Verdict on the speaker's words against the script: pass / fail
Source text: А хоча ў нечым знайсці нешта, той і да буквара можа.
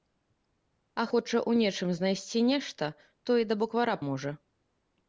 pass